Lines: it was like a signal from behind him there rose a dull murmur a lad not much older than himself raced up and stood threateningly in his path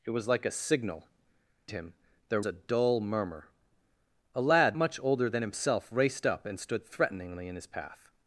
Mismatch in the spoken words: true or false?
true